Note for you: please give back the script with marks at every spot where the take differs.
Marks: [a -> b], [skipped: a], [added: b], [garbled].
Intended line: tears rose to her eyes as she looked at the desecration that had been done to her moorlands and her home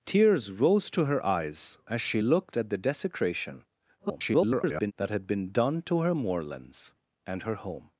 tears rose to her eyes as she looked at the desecration [garbled] that had been done to her moorlands and her home